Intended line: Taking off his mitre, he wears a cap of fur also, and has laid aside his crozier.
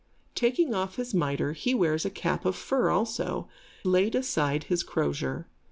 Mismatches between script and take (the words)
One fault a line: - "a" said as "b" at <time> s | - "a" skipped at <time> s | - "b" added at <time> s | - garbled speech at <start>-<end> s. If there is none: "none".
- "and has" skipped at 3.5 s